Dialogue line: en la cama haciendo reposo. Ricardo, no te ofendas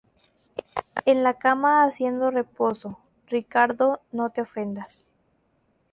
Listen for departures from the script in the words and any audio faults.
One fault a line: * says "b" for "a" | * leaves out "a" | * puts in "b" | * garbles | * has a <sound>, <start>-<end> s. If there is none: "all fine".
all fine